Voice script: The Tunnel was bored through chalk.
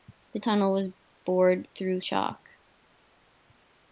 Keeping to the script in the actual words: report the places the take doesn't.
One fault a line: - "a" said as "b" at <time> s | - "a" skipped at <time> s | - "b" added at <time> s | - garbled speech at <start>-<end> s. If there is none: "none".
none